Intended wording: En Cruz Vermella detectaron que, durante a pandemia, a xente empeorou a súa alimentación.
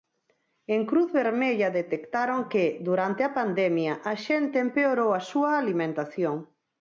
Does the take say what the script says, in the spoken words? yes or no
yes